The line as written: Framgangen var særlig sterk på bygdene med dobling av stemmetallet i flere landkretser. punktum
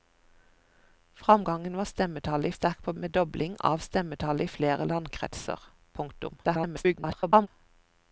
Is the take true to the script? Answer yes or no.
no